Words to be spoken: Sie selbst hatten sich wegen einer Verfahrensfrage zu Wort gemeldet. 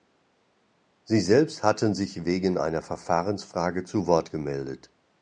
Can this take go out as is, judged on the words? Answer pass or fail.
pass